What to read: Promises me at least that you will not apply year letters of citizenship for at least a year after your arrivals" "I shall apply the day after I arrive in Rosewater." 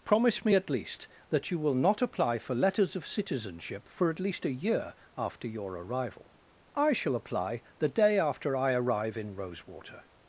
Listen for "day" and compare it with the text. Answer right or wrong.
right